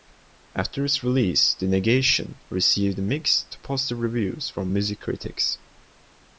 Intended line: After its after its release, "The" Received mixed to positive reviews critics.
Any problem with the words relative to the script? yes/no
yes